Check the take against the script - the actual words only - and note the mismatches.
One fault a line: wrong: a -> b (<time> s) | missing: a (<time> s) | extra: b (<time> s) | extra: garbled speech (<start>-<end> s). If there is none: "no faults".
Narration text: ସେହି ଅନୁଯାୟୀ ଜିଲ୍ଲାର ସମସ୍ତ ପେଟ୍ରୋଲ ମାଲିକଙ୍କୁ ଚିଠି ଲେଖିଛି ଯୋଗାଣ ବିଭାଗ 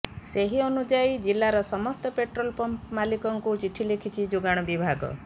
extra: ପମ୍ପ (2.6 s)